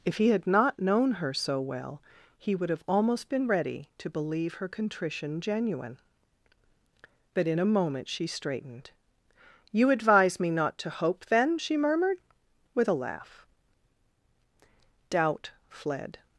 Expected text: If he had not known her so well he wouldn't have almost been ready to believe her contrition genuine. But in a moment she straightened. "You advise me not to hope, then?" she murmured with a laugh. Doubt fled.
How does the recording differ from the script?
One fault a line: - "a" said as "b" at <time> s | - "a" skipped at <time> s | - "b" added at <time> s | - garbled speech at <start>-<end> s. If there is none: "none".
- "wouldn't" said as "would" at 2.5 s